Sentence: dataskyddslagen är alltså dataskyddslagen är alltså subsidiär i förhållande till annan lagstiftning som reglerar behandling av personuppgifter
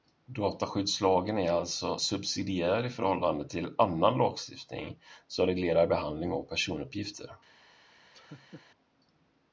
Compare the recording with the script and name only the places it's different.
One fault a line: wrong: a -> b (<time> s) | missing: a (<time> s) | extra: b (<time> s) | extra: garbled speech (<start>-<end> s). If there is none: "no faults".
missing: dataskyddslagen är alltså (2.0 s)